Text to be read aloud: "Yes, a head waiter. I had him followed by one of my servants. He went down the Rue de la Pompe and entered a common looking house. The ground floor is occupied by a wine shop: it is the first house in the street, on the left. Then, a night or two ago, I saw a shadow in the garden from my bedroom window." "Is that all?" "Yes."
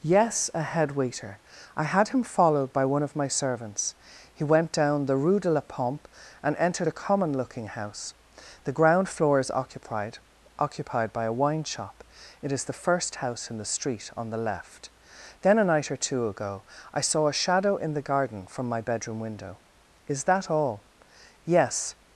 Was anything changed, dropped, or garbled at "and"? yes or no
no